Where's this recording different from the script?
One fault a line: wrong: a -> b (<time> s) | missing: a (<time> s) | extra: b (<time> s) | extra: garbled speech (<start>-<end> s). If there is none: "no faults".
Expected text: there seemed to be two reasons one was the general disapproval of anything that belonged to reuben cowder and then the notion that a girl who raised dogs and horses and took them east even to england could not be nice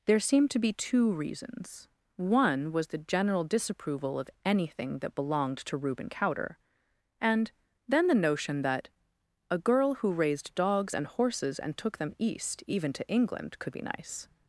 missing: not (13.8 s)